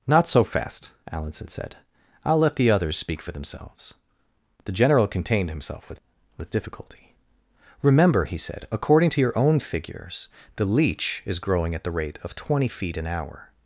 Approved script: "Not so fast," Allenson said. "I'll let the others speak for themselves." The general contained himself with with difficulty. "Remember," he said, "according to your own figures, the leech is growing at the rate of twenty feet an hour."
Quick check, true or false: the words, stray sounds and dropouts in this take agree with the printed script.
true